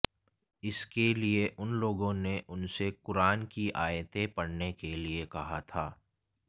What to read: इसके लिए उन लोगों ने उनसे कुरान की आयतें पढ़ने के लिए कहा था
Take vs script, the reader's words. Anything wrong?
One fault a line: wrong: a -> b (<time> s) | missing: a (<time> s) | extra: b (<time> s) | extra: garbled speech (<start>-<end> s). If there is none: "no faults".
no faults